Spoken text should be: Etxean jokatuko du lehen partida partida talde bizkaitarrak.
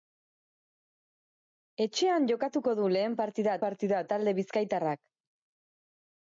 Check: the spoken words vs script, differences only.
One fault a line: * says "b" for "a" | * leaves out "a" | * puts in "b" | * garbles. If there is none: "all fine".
all fine